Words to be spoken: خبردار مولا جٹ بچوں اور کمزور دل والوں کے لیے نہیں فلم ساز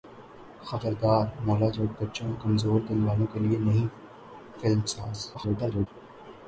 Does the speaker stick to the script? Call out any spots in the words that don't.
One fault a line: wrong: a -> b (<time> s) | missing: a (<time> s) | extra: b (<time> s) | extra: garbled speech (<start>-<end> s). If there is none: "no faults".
extra: garbled speech (5.3-5.9 s)